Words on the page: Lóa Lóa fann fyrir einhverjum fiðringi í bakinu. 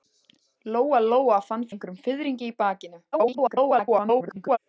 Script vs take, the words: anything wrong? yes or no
yes